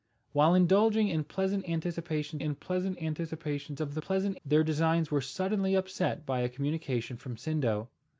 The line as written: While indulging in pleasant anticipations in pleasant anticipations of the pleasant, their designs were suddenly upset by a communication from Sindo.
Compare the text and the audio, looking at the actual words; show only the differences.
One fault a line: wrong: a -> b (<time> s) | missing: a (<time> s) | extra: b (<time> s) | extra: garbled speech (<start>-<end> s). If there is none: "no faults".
no faults